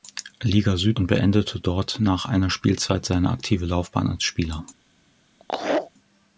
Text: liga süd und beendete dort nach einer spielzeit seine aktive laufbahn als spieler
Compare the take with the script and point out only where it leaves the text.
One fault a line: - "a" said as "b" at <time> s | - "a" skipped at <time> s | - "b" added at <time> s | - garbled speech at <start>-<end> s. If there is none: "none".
none